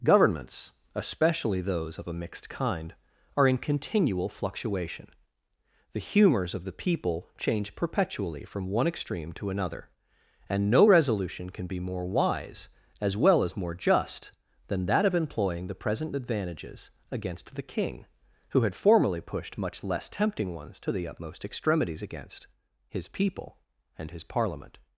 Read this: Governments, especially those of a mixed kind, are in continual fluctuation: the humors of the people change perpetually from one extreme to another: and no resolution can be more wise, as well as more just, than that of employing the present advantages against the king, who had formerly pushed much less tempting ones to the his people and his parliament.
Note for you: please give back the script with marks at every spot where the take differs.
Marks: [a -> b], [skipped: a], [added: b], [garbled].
Governments, especially those of a mixed kind, are in continual fluctuation: the humors of the people change perpetually from one extreme to another: and no resolution can be more wise, as well as more just, than that of employing the present advantages against the king, who had formerly pushed much less tempting ones to the [added: utmost extremities against] his people and his parliament.